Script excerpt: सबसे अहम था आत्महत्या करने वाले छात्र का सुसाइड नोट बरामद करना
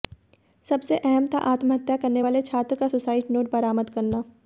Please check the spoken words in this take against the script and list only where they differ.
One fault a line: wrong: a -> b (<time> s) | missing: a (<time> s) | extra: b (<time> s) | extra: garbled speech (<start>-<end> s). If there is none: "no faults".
no faults